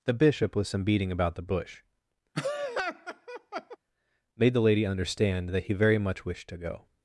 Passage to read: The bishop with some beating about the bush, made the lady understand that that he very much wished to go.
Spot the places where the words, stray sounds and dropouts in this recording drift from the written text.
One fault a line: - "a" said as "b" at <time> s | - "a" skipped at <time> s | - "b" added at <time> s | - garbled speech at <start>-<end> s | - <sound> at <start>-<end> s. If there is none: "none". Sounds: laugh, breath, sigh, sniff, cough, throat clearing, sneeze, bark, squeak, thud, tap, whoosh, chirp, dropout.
- laugh at 2.3-3.8 s
- "that" skipped at 5.6 s